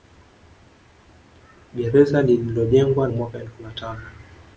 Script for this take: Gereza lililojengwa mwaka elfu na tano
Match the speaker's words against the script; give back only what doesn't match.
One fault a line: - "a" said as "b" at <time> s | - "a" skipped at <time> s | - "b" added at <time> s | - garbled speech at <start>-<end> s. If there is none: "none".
none